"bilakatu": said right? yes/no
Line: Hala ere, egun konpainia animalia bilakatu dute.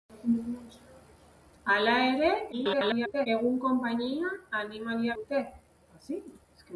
no